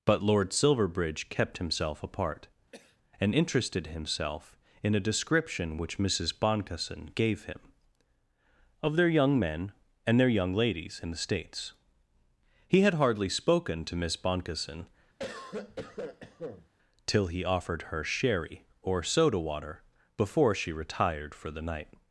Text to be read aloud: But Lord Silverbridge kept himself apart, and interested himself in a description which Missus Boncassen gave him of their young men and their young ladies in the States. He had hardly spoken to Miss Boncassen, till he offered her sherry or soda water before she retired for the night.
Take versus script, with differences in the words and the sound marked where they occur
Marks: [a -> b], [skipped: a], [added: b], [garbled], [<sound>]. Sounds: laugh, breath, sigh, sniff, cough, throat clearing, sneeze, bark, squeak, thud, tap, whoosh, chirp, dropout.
But Lord Silverbridge kept himself apart, [cough] and interested himself in a description which Missus Boncassen gave him of their young men and their young ladies in the States. He had hardly spoken to Miss Boncassen, [cough] till he offered her sherry or soda water before she retired for the night.